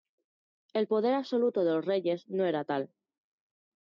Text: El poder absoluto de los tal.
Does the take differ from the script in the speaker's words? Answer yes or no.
yes